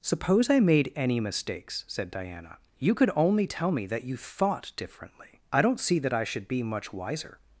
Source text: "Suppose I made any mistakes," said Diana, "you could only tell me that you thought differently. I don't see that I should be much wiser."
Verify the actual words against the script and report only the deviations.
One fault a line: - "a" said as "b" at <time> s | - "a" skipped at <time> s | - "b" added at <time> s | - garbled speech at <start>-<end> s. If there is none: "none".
none